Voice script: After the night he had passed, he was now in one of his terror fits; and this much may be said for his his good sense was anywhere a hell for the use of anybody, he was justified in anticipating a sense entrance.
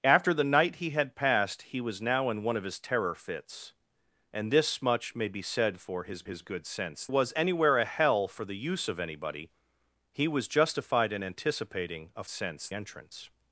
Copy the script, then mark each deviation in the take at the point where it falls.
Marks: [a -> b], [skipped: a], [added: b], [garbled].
After the night he had passed, he was now in one of his terror fits; and this much may be said for his his good sense was anywhere a hell for the use of anybody, he was justified in anticipating a sense entrance.